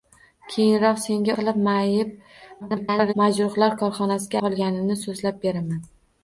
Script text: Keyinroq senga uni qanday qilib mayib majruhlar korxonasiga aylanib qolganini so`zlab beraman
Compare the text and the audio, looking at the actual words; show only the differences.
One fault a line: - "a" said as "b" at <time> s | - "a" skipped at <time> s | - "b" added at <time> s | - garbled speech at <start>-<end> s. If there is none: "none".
- "uni qanday" skipped at 1.3 s
- garbled speech at 2.6-3.1 s
- "aylanib" skipped at 4.4 s